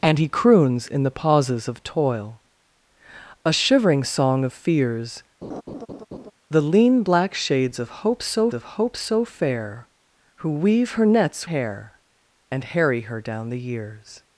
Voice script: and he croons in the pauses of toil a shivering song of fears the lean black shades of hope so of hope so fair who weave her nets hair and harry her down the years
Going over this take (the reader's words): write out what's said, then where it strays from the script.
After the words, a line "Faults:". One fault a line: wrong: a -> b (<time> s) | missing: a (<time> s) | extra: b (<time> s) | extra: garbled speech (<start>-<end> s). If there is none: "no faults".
and he croons in the pauses of toil a shivering song of fears the lean black shades of hope so of hope so fair who weave her nets hair and harry her down the years
Faults:
no faults